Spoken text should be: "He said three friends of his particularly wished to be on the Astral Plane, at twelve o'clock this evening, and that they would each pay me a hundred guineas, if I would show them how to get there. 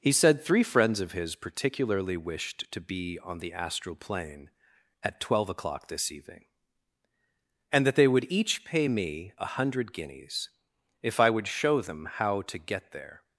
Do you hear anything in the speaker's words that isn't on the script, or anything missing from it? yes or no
no